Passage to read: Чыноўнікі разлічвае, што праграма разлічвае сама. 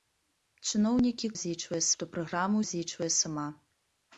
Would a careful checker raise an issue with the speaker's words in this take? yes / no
no